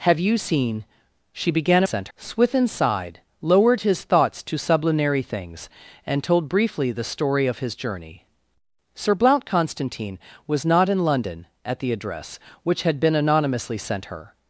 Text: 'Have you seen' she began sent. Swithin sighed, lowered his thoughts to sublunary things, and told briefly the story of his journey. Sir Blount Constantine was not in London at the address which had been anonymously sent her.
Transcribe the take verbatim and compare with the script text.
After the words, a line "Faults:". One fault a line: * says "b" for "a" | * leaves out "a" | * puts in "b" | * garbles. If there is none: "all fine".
'Have you seen' she began sent. Swithin sighed, lowered his thoughts to sublunary things, and told briefly the story of his journey. Sir Blount Constantine was not in London at the address which had been anonymously sent her.
Faults:
all fine